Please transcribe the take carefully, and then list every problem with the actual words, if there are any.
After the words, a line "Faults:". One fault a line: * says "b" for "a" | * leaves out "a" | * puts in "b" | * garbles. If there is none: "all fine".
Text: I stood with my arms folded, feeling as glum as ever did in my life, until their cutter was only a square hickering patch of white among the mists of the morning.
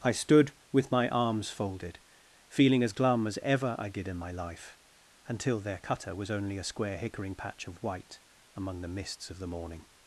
I stood with my arms folded, feeling as glum as ever I did in my life, until their cutter was only a square hickering patch of white among the mists of the morning.
Faults:
* puts in "I"